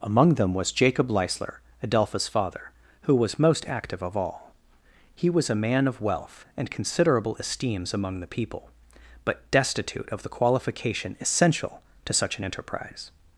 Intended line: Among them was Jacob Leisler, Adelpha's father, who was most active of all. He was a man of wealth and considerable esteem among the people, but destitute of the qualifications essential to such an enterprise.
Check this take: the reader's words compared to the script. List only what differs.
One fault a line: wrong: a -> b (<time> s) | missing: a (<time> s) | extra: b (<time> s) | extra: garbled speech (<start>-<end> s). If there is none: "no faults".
wrong: esteem -> esteems (7.3 s)
wrong: qualifications -> qualification (10.3 s)